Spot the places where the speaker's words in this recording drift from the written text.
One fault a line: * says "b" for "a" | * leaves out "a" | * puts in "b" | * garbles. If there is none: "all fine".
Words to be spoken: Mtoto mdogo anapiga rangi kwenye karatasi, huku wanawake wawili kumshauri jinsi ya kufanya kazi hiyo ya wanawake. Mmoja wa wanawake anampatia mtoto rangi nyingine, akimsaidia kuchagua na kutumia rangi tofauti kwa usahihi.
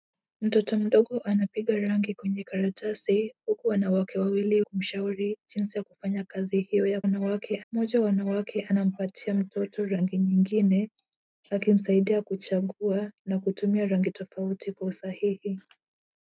all fine